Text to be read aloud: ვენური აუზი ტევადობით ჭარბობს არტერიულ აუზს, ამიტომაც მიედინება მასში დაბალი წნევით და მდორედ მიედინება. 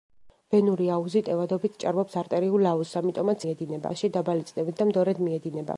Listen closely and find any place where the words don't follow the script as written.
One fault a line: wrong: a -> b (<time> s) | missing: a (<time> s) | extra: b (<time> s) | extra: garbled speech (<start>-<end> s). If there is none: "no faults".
no faults